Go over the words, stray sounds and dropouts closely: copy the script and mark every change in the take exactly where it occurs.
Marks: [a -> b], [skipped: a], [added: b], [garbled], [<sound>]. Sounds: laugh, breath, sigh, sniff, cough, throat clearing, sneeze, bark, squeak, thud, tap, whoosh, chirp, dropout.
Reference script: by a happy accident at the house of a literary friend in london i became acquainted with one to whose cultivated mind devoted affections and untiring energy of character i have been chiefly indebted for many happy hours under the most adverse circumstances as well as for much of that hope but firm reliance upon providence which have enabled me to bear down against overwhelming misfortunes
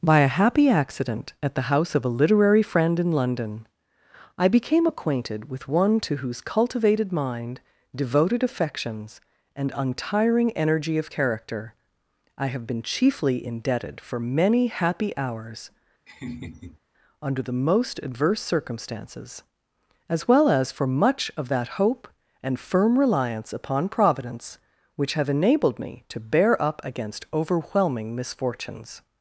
by a happy accident at the house of a literary friend in london i became acquainted with one to whose cultivated mind devoted affections and untiring energy of character i have been chiefly indebted for many happy hours [laugh] under the most adverse circumstances as well as for much of that hope [but -> and] firm reliance upon providence which have enabled me to bear [down -> up] against overwhelming misfortunes